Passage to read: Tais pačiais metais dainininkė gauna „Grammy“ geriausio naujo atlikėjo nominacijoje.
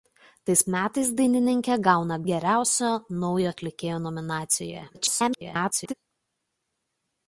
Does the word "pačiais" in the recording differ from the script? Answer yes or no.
yes